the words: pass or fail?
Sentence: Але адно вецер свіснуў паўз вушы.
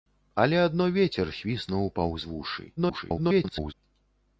fail